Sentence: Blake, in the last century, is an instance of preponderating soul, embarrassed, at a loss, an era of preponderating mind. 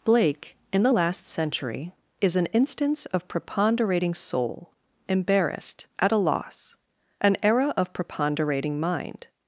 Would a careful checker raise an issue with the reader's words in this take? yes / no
no